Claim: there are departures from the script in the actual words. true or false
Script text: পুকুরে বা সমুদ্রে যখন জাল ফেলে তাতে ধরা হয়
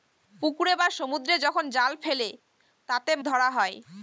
false